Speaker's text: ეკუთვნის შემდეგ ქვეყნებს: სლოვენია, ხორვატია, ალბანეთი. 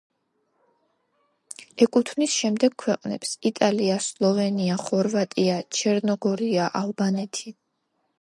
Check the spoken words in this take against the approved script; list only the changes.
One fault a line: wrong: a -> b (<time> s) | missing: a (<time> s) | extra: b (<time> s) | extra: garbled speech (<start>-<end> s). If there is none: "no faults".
extra: იტალია (3.5 s)
extra: ჩერნოგორია (5.8 s)